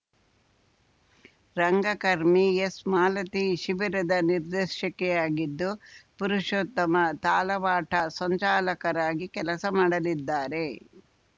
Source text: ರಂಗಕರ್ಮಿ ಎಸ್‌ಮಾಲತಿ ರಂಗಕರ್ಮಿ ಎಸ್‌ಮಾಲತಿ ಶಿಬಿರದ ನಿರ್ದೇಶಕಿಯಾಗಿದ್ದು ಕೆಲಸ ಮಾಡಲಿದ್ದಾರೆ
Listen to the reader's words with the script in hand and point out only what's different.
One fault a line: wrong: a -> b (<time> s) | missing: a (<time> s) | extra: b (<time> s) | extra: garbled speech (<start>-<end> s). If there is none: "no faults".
wrong: ರಂಗಕರ್ಮಿ ಎಸ್‌ಮಾಲತಿ ಶಿಬಿರದ ನಿರ್ದೇಶಕಿಯಾಗಿದ್ದು -> ಶಿಬಿರದ ನಿರ್ದೇಶಕಿಯಾಗಿದ್ದು ಪುರುಷೋತ್ತಮ ತಾಲವಾಟ ಸಂಚಾಲಕರಾಗಿ (3.6 s)